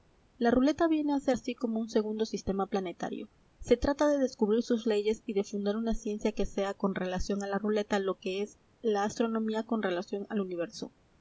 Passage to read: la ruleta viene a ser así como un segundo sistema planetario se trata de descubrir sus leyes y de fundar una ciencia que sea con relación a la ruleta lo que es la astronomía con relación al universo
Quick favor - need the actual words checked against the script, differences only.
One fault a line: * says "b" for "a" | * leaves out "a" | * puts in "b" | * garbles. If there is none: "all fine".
all fine